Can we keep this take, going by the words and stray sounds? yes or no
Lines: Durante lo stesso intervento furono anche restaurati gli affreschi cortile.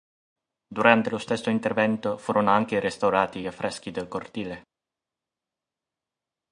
no